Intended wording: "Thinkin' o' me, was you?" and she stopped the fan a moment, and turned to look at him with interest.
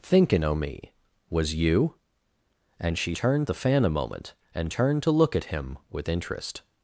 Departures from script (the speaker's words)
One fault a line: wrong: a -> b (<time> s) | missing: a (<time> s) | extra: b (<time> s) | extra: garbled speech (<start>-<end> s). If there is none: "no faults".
wrong: stopped -> turned (3.1 s)